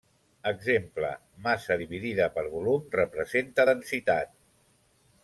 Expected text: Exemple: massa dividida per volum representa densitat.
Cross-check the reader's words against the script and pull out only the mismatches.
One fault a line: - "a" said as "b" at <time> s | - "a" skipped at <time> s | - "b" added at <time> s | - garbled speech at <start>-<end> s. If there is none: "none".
none